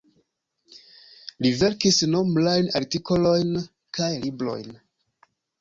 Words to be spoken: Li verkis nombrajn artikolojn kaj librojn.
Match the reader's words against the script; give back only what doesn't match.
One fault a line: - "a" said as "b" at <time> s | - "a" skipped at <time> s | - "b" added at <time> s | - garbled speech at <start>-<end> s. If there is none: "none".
none